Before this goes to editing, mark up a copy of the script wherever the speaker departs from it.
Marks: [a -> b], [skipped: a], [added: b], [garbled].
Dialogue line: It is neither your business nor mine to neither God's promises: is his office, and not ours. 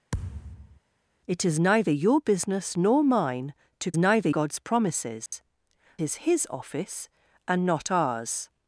It is neither your business nor mine to neither God's promises: is his office, and not ours.